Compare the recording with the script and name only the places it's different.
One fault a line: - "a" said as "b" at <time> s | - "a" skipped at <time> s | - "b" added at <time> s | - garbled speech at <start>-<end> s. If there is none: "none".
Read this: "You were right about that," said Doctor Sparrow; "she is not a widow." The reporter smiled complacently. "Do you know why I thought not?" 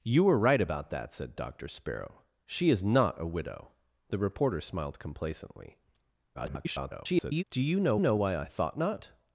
- garbled speech at 6.3-7.4 s
- "know" added at 8.0 s